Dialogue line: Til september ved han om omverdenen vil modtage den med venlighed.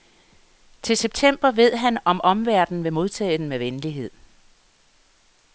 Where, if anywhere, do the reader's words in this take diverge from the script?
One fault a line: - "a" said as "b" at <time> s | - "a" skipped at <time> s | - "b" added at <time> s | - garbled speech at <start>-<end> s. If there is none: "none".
none